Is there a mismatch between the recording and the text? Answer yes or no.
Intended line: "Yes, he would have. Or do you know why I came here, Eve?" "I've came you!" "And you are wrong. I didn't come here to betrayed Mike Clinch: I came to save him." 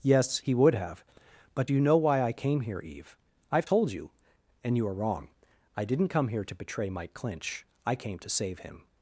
yes